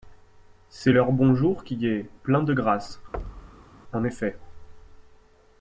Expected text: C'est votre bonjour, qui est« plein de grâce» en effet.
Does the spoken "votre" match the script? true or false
false